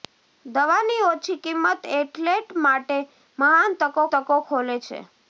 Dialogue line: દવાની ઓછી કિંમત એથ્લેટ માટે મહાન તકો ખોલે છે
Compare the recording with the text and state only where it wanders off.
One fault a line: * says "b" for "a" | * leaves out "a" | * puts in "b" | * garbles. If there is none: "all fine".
* puts in "તકો"